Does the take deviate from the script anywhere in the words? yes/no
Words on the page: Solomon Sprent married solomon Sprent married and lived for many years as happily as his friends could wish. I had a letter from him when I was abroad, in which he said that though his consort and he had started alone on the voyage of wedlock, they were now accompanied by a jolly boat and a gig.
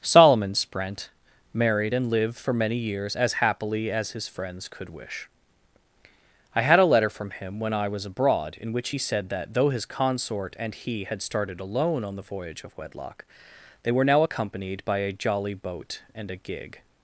yes